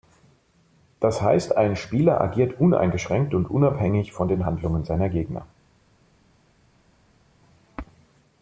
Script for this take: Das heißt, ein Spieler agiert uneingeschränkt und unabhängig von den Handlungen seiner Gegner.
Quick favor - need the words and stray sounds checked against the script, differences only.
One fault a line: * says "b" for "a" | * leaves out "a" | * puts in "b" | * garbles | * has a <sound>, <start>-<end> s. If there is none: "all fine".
all fine